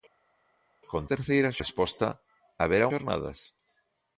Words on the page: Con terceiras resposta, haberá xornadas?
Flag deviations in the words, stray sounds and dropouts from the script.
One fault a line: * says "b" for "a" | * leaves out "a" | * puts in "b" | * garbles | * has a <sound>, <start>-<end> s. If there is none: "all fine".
all fine